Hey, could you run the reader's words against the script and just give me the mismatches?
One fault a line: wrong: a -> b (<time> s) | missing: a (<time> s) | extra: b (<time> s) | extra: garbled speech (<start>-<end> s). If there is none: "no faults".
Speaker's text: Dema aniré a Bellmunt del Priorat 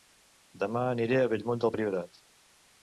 no faults